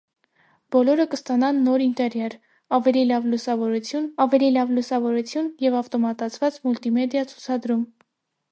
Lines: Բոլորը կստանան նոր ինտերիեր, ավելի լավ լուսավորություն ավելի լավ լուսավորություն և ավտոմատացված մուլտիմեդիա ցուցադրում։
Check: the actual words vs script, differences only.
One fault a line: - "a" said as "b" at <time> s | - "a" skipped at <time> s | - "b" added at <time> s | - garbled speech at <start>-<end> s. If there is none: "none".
none